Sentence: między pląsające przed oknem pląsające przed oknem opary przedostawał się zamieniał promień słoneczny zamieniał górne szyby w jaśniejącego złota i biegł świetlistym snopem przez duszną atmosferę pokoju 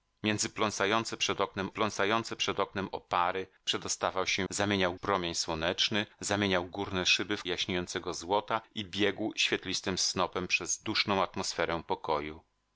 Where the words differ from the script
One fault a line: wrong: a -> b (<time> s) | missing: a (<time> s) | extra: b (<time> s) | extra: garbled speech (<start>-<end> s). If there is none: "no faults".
no faults